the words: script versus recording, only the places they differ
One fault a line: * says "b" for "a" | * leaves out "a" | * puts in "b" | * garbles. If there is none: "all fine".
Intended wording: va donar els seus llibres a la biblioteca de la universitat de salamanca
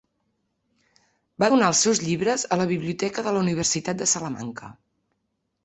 all fine